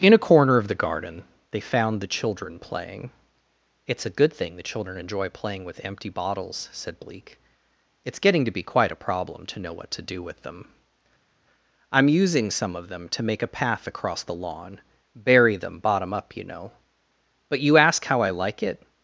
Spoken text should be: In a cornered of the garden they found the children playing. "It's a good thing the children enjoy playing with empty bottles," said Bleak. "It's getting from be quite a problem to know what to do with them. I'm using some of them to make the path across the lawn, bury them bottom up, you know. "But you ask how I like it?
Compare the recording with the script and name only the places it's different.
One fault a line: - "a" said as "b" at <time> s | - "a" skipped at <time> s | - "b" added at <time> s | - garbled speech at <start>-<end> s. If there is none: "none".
- "cornered" said as "corner" at 0.3 s
- "from" said as "to" at 8.4 s
- "the" said as "a" at 13.4 s